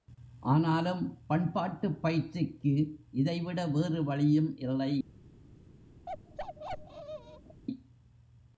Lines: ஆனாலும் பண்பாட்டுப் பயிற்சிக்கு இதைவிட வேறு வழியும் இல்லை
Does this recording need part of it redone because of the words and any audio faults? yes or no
yes